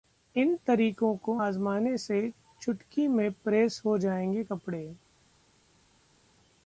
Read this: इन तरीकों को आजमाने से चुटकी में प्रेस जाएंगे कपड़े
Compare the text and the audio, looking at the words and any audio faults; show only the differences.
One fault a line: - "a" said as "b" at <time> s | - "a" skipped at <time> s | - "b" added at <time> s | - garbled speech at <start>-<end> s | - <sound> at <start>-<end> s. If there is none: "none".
- "हो" added at 3.9 s